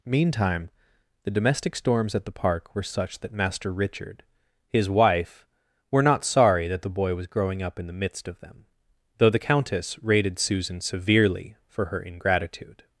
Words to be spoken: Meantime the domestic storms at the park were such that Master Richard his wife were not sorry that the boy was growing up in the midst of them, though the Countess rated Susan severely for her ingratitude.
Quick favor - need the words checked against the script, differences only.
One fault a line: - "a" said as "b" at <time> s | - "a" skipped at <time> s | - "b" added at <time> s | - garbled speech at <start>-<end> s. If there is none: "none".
none